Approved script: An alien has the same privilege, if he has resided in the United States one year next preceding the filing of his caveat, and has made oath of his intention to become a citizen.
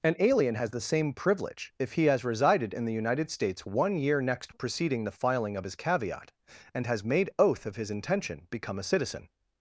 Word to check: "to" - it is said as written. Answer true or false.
false